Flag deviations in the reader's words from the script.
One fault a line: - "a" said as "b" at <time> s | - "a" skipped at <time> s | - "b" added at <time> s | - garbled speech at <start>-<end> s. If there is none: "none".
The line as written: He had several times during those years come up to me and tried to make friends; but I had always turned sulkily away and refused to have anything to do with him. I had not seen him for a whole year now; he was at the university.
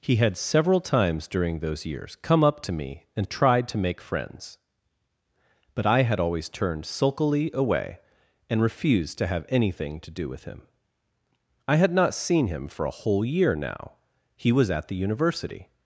none